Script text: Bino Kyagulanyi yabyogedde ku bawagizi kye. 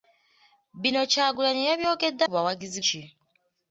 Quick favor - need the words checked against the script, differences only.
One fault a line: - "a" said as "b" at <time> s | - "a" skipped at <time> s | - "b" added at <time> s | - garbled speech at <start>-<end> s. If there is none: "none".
none